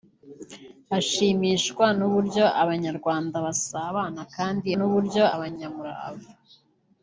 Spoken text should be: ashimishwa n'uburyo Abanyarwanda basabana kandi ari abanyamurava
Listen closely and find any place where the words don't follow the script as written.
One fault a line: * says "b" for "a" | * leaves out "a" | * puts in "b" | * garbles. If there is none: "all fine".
* says "n'uburyo" for "ari"